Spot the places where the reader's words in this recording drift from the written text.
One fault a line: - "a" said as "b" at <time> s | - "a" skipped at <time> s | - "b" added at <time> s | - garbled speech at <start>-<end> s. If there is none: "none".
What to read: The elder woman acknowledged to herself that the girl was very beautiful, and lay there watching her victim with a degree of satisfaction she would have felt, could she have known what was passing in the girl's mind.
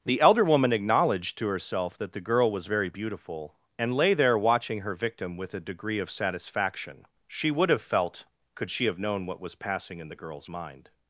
none